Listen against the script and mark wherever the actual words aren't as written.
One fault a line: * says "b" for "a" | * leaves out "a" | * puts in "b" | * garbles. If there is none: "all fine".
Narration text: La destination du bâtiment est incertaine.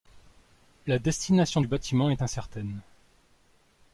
all fine